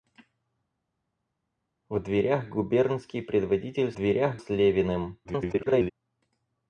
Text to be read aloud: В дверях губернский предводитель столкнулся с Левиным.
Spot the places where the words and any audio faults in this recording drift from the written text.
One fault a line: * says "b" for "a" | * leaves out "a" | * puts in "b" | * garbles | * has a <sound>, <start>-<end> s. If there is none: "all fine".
* says "дверях" for "столкнулся"
* garbles